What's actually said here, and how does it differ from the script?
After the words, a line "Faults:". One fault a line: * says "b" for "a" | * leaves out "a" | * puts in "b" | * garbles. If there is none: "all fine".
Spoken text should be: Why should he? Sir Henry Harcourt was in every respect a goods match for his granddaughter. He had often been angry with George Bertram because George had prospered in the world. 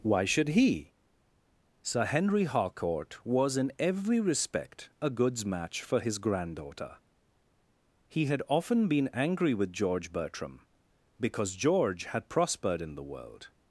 Why should he? Sir Henry Harcourt was in every respect a goods match for his granddaughter. He had often been angry with George Bertram because George had prospered in the world.
Faults:
all fine